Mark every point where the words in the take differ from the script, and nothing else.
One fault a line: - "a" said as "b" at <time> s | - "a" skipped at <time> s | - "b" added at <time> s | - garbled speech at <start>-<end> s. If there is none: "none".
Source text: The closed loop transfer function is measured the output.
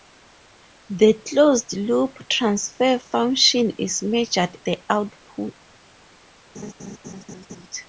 none